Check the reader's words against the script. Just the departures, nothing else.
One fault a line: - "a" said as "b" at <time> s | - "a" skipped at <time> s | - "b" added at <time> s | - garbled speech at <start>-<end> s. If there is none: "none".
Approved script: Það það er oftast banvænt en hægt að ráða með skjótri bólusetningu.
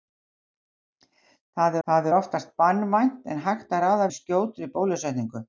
none